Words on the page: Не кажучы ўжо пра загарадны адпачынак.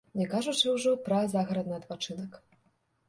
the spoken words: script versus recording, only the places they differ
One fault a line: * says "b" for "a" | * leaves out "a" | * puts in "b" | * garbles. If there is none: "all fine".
all fine